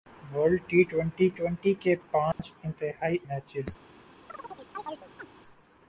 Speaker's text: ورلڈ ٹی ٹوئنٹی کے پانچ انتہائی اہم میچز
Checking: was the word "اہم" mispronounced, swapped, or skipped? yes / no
yes